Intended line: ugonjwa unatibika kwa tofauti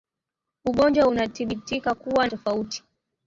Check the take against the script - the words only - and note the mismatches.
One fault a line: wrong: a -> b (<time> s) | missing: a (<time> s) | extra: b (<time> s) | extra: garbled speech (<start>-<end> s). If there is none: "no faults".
no faults